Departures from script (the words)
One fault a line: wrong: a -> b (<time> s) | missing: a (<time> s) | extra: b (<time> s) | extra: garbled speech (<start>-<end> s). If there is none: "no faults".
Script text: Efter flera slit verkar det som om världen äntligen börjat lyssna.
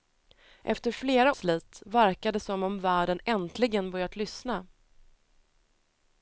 no faults